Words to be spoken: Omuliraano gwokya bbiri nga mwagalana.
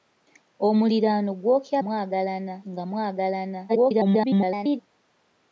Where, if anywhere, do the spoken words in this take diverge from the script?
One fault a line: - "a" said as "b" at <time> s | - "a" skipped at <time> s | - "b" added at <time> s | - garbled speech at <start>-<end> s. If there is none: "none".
- "bbiri" said as "mwagalana" at 1.8 s
- garbled speech at 3.7-4.8 s